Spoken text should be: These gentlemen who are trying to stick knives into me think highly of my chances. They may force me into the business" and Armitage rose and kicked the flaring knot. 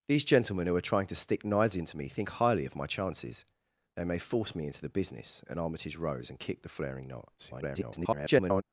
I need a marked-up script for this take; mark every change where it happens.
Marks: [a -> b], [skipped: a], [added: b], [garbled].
These gentlemen who are trying to stick knives into me think highly of my chances. They may force me into the business" and Armitage rose and kicked the flaring knot. [garbled]